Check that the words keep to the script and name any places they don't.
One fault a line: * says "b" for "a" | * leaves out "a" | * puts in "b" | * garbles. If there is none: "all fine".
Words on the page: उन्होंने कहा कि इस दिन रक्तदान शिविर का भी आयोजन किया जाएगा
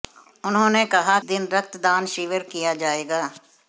* leaves out "कि इस"
* leaves out "का भी आयोजन"